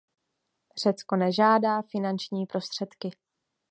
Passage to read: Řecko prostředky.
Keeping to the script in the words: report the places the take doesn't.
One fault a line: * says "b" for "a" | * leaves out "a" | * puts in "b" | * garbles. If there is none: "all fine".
* puts in "nežádá finanční"